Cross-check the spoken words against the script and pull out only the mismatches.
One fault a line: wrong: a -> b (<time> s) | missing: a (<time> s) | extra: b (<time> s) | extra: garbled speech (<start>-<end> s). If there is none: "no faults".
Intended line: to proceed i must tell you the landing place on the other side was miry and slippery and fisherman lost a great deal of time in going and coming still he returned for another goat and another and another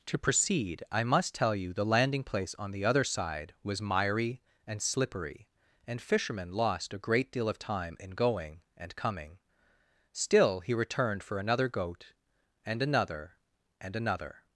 no faults